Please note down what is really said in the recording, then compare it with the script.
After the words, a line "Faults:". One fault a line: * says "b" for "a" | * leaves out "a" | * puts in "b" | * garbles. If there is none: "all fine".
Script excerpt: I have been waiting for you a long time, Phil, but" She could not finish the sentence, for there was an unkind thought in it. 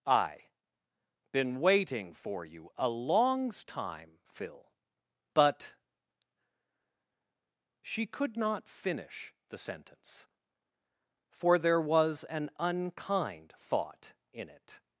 I been waiting for you a longs time, Phil, but" She could not finish the sentence, for there was an unkind thought in it.
Faults:
* leaves out "have"
* says "longs" for "long"